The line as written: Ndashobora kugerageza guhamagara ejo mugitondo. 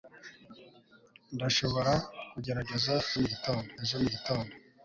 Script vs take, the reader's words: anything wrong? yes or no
yes